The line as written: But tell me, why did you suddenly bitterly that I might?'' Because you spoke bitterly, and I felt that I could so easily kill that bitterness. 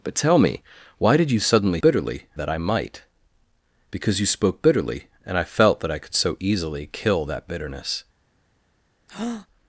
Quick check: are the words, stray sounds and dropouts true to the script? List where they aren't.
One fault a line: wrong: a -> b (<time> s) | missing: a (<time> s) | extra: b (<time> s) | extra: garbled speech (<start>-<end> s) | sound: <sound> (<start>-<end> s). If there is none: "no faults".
sound: breath (9.1-9.5 s)